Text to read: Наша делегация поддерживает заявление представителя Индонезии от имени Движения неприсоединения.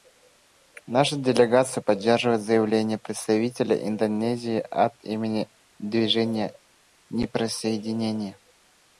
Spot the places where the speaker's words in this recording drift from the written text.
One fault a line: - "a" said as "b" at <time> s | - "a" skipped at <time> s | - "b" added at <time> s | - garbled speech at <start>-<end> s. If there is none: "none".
none